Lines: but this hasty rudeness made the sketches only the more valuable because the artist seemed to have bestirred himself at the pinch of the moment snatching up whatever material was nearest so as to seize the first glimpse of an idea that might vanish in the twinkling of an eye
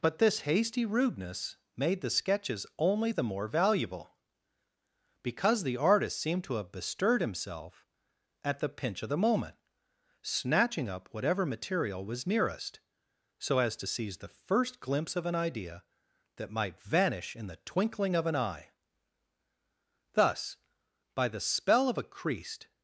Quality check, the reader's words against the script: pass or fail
fail